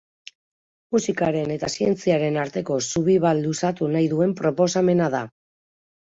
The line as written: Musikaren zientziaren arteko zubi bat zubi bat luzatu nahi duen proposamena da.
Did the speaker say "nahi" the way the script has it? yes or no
yes